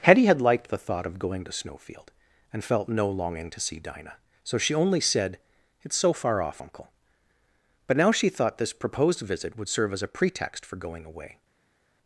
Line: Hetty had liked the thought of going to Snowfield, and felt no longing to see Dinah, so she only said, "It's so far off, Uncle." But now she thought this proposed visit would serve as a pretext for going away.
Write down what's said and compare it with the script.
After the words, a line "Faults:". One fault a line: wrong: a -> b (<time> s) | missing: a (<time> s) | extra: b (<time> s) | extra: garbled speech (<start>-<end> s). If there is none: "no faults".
Hetty had liked the thought of going to Snowfield, and felt no longing to see Dinah, so she only said, "It's so far off, Uncle." But now she thought this proposed visit would serve as a pretext for going away.
Faults:
no faults